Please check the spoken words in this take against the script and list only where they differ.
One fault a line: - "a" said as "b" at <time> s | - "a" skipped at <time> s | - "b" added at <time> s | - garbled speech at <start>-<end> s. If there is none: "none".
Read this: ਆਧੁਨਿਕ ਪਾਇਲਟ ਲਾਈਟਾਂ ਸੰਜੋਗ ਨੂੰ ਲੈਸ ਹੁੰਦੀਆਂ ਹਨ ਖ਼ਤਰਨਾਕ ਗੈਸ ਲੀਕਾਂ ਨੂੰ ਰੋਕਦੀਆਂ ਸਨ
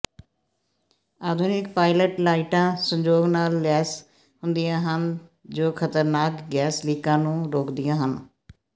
- "ਨੂੰ" said as "ਨਾਲ" at 3.3 s
- "ਜੋ" added at 5.5 s
- "ਸਨ" said as "ਹਨ" at 8.0 s